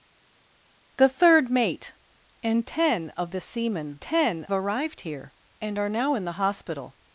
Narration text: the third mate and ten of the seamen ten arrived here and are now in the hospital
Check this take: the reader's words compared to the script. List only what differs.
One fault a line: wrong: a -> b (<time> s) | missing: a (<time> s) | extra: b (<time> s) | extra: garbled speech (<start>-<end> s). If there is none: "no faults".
no faults